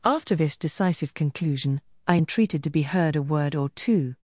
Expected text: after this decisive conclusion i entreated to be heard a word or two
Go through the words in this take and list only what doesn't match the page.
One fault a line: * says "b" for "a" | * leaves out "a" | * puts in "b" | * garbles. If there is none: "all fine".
all fine